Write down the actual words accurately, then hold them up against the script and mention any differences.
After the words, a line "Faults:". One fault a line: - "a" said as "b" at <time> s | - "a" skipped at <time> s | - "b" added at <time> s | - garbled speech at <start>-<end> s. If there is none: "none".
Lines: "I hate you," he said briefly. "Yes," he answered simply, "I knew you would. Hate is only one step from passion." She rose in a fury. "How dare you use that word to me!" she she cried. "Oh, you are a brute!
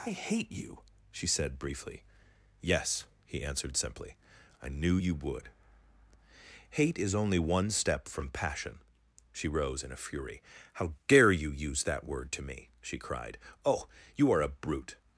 "I hate you," she said briefly. "Yes," he answered simply, "I knew you would. Hate is only one step from passion." She rose in a fury. "How dare you use that word to me!" she cried. "Oh, you are a brute!
Faults:
- "he" said as "she" at 1.1 s
- "she" skipped at 13.0 s